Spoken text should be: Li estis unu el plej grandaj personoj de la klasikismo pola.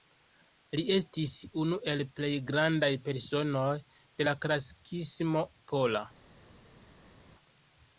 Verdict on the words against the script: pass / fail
pass